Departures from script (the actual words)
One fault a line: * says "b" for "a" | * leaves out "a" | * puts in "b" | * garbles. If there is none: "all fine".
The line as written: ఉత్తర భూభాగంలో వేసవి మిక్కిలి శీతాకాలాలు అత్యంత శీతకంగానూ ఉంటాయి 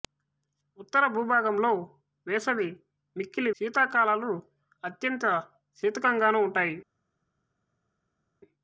all fine